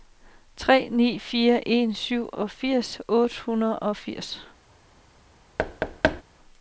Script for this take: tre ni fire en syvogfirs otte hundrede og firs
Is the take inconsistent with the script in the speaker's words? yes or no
no